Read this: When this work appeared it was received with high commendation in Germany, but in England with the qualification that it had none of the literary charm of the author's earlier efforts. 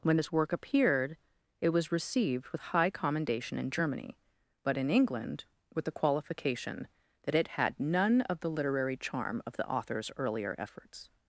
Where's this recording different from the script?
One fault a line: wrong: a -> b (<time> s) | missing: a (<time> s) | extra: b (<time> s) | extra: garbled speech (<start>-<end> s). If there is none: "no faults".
no faults